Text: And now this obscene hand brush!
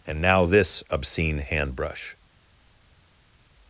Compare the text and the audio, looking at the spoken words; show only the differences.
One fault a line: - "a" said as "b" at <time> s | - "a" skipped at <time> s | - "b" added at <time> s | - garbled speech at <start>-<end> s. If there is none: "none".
none